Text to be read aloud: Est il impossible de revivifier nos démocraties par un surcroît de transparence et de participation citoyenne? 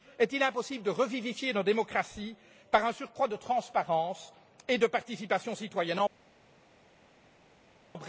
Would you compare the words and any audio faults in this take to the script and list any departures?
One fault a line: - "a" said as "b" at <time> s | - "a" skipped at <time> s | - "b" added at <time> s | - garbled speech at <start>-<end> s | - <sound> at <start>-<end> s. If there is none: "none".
none